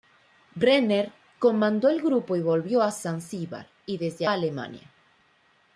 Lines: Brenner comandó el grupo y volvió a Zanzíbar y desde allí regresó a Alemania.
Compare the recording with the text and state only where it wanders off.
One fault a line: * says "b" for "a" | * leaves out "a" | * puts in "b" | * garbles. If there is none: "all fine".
* leaves out "allí regresó"